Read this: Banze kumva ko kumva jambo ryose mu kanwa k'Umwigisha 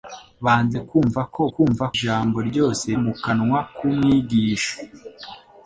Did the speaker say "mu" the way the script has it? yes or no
yes